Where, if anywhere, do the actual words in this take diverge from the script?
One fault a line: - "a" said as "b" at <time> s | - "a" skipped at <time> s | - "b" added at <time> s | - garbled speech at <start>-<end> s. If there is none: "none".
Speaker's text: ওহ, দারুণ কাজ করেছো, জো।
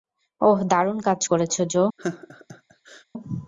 none